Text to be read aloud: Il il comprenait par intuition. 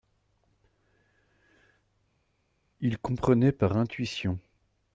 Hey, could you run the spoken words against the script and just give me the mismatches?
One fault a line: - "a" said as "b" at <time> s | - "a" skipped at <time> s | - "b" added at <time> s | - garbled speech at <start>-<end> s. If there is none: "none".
- "il" skipped at 3.0 s